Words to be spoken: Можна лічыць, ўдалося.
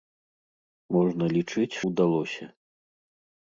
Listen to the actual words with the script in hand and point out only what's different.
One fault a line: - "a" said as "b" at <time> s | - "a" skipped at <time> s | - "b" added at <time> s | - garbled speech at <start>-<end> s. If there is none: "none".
none